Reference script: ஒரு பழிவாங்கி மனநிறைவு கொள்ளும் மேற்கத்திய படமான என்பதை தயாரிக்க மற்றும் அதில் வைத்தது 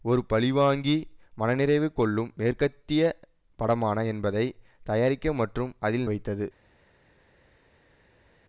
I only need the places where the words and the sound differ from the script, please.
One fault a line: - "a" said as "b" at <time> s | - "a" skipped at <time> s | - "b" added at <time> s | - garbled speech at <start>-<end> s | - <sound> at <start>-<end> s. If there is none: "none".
none